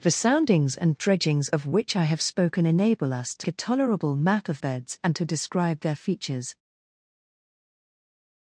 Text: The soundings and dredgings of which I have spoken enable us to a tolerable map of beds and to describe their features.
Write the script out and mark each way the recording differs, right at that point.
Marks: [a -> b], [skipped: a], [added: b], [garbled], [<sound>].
The soundings and dredgings of which I have spoken enable us to a tolerable map of beds and to describe their features.